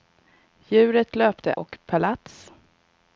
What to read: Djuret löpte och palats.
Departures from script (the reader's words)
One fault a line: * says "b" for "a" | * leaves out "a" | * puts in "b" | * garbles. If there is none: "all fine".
all fine